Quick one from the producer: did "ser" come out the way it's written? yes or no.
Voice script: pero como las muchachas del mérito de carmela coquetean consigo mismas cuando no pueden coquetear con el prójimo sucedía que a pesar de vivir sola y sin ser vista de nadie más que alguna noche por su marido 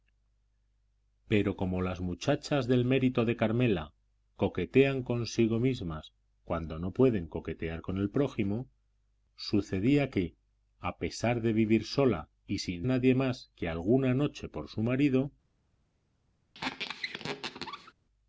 no